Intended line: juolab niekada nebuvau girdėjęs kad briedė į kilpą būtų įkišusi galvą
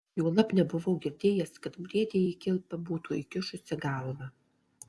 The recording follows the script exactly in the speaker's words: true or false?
false